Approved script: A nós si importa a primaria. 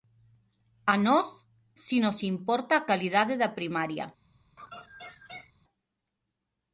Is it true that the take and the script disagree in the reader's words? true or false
true